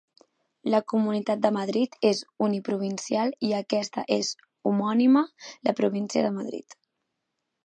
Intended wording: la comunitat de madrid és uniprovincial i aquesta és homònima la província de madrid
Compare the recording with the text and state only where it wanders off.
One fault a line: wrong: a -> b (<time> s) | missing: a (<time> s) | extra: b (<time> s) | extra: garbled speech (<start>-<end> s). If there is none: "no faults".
no faults